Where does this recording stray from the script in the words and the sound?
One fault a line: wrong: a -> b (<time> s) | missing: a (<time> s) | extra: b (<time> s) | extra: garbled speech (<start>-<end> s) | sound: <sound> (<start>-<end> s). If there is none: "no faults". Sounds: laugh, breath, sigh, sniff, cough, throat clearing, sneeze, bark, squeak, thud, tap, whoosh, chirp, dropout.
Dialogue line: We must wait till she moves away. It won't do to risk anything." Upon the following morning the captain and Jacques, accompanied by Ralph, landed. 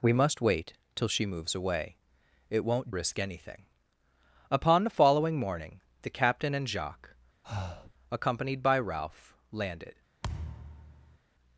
missing: do to (2.9 s)
sound: breath (7.4-7.9 s)
sound: thud (10.2-11.2 s)